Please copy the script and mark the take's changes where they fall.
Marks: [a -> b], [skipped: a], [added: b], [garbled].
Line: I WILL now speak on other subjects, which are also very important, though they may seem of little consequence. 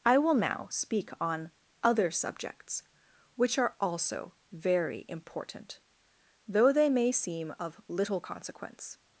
I WILL now speak on other subjects, which are also very important, though they may seem of little consequence.